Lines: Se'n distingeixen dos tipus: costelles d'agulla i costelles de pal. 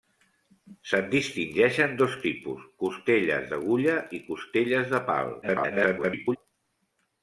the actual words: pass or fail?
fail